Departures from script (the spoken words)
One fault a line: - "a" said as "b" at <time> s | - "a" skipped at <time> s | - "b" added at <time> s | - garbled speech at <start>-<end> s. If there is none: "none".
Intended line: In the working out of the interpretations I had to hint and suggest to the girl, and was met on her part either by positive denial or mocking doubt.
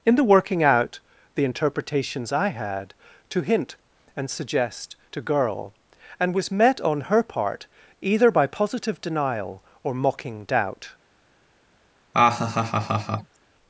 - "of" skipped at 1.0 s
- "the" skipped at 5.2 s